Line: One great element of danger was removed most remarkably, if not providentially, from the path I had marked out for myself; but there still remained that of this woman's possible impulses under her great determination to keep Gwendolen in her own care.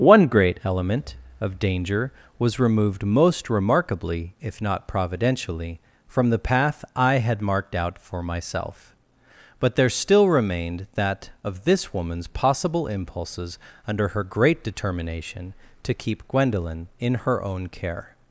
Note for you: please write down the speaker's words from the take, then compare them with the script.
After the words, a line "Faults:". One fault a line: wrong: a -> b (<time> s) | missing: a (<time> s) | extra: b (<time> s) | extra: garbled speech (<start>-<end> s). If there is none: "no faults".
One great element of danger was removed most remarkably, if not providentially, from the path I had marked out for myself; but there still remained that of this woman's possible impulses under her great determination to keep Gwendolen in her own care.
Faults:
no faults